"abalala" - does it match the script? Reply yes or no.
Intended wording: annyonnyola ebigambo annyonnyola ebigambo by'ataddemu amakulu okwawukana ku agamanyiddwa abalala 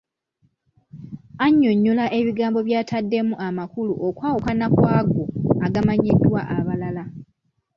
yes